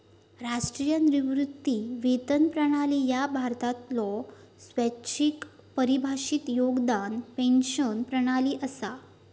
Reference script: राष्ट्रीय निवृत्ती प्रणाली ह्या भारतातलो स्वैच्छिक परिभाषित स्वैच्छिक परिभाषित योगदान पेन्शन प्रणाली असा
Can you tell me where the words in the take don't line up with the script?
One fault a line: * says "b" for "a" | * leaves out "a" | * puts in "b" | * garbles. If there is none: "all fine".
* puts in "वेतन"
* leaves out "स्वैच्छिक परिभाषित"